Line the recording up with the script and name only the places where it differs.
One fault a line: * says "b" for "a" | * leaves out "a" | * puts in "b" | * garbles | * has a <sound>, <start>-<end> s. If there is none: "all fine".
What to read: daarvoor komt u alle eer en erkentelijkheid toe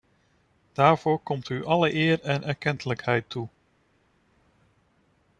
all fine